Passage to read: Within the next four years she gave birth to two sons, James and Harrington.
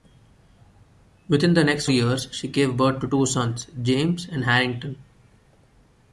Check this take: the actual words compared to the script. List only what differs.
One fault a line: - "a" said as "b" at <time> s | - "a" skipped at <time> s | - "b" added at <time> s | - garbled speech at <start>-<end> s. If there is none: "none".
- "four" skipped at 1.9 s